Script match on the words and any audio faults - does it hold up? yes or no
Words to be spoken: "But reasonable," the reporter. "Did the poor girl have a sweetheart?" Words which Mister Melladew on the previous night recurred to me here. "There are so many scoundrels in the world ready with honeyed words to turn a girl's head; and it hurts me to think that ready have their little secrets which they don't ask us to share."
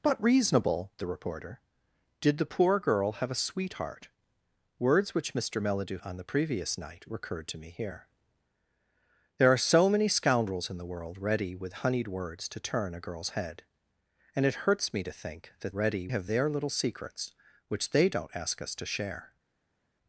yes